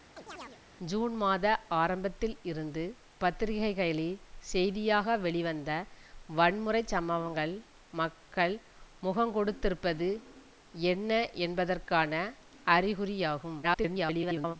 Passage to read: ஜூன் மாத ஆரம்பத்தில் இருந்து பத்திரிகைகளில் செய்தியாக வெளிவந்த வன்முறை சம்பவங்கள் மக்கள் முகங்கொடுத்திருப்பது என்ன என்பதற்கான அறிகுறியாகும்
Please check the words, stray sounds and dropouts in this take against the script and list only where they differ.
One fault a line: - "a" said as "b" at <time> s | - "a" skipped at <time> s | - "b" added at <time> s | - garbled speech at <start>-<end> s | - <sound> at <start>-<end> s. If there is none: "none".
- chirp at 0.2-0.6 s
- garbled speech at 13.6-14.6 s